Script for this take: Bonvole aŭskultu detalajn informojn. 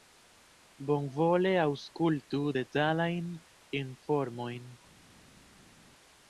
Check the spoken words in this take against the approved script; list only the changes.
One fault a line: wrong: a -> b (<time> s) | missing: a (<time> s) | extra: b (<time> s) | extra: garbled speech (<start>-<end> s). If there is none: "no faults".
no faults